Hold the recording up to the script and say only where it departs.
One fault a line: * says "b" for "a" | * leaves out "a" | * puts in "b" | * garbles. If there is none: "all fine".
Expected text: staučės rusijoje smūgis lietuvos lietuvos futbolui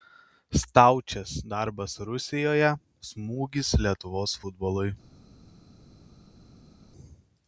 * puts in "darbas"
* leaves out "lietuvos"